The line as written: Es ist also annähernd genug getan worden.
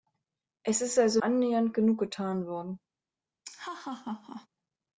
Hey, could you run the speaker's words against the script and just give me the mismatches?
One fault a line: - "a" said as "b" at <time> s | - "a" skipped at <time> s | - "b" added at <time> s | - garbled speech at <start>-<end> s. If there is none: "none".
none